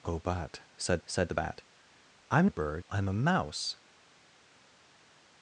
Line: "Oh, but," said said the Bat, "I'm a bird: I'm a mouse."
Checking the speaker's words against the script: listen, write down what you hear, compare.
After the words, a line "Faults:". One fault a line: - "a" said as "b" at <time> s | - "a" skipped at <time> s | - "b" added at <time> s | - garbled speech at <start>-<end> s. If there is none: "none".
"Oh, but," said said the Bat, "I'm a bird: I'm a mouse."
Faults:
none